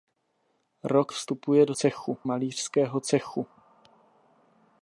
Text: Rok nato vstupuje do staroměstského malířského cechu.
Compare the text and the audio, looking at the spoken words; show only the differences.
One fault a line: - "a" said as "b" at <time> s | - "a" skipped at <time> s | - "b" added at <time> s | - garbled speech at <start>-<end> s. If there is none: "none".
- "nato" skipped at 1.1 s
- "staroměstského" said as "cechu" at 1.7 s